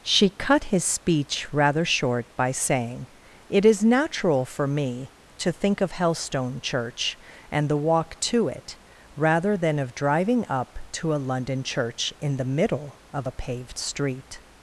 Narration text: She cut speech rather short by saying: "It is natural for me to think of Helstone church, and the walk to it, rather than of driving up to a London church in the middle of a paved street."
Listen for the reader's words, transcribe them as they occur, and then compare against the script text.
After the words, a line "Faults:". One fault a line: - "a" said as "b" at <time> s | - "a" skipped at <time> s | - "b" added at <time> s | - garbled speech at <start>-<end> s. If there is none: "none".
She cut his speech rather short by saying: "It is natural for me to think of Helstone church, and the walk to it, rather than of driving up to a London church in the middle of a paved street."
Faults:
- "his" added at 0.7 s